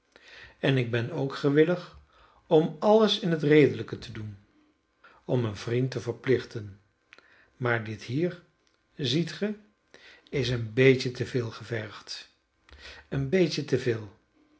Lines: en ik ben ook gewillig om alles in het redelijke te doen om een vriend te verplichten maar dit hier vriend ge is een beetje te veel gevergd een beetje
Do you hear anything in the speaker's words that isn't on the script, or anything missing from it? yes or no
yes